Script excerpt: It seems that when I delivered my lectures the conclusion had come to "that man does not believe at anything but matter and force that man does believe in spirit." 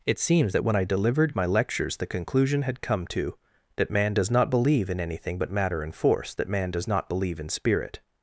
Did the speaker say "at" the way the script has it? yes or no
no